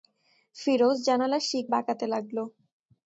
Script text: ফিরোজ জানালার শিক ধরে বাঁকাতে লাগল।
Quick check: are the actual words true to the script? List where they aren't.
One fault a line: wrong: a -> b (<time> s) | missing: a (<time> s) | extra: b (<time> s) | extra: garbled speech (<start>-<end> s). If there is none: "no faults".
missing: ধরে (1.6 s)